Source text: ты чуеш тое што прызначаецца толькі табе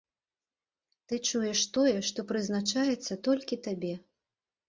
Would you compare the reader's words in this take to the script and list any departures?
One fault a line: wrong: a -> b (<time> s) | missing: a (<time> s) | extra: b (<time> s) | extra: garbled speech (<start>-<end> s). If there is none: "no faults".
no faults